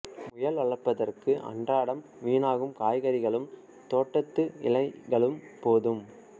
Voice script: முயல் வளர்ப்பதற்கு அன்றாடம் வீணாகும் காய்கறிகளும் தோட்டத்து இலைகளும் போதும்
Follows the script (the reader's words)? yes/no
yes